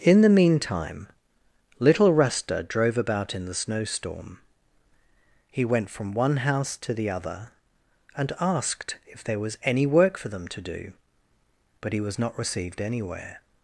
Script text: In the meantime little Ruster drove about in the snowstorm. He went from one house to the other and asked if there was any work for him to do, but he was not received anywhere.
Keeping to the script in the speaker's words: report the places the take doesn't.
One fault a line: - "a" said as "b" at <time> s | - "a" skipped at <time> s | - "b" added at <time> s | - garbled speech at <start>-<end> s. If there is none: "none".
- "him" said as "them" at 10.3 s